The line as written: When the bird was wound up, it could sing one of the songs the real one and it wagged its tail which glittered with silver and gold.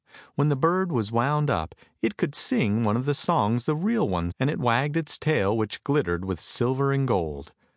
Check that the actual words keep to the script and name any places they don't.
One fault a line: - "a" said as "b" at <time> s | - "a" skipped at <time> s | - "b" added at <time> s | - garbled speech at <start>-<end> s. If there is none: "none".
none